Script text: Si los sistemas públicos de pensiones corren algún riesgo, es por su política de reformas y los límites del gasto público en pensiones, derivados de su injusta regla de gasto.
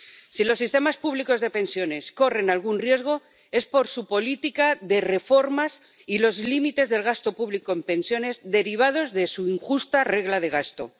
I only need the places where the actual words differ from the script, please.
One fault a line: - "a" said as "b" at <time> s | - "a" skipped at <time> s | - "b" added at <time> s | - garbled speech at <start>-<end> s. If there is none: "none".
none